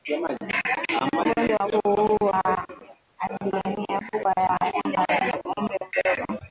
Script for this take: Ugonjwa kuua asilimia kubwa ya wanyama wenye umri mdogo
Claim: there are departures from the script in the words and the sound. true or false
false